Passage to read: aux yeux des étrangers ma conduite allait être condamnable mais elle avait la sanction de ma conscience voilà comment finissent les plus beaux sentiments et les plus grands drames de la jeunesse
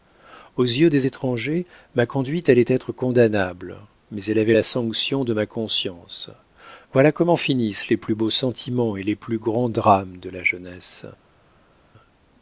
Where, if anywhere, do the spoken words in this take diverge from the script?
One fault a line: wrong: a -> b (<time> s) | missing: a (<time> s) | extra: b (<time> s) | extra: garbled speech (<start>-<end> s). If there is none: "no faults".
no faults